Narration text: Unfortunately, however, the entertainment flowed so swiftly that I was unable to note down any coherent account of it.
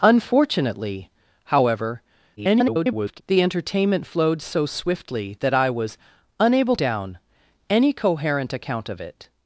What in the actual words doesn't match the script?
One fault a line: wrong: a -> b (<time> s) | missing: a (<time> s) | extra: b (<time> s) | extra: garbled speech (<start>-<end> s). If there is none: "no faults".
extra: garbled speech (2.4-3.2 s)
missing: to note (6.7 s)